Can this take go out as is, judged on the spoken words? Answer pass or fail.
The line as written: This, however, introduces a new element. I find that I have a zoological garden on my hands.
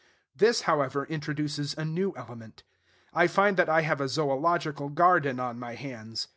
pass